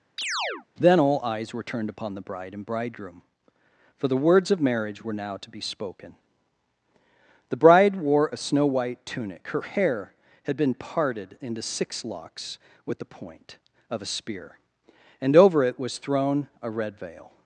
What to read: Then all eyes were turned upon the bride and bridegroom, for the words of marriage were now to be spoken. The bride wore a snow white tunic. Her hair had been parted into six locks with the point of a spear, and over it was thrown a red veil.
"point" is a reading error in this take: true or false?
false